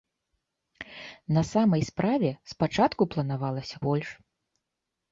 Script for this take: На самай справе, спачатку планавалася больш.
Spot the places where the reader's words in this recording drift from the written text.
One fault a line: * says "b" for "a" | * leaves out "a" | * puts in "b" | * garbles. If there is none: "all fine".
all fine